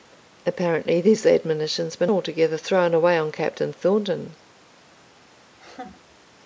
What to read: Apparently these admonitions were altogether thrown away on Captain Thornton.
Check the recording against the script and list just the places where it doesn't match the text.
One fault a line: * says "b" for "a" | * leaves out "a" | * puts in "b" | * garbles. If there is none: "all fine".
all fine